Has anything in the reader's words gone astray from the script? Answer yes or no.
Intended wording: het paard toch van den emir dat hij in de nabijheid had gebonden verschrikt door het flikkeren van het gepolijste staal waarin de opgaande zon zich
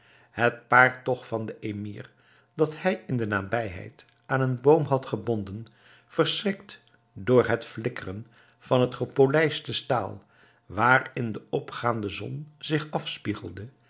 yes